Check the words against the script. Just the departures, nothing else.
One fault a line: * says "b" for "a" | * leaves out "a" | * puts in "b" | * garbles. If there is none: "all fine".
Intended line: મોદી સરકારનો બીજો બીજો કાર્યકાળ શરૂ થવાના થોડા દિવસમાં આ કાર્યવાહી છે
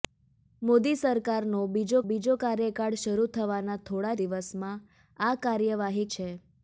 all fine